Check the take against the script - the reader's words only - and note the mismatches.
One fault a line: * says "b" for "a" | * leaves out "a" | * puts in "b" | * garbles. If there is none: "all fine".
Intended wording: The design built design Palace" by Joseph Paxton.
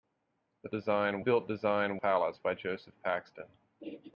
all fine